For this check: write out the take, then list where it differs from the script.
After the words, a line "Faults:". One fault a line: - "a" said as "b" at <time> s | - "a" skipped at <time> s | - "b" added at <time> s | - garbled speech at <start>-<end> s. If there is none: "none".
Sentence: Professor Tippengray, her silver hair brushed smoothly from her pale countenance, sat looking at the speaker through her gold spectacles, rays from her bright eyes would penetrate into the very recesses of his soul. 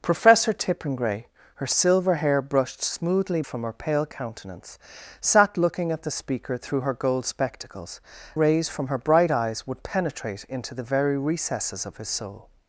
Professor Tippengray, her silver hair brushed smoothly from her pale countenance, sat looking at the speaker through her gold spectacles, rays from her bright eyes would penetrate into the very recesses of his soul.
Faults:
none